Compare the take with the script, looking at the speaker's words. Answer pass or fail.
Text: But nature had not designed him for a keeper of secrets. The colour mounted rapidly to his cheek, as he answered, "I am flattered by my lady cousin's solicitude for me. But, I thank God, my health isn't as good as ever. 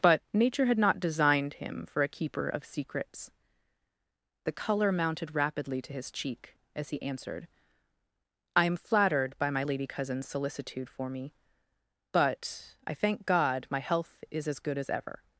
fail